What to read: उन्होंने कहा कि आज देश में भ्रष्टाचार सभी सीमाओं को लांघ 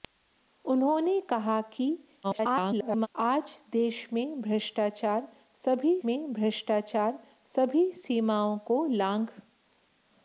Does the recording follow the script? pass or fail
fail